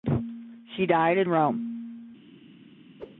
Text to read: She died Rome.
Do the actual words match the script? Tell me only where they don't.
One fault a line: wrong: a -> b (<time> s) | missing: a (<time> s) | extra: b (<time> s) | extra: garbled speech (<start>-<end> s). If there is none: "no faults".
extra: in (1.2 s)